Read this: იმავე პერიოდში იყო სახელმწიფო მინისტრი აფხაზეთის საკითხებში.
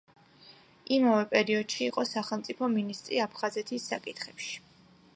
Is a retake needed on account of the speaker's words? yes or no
no